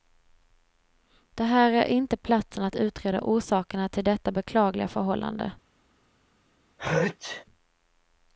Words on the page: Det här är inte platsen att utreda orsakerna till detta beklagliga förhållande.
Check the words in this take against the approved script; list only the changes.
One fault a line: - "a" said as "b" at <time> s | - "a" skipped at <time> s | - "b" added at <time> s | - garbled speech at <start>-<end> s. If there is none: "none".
none